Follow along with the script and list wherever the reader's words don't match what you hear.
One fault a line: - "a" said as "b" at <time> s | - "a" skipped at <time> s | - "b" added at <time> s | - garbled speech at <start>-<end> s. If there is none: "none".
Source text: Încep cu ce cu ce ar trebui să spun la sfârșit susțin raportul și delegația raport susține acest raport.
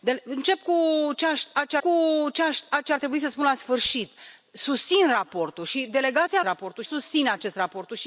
none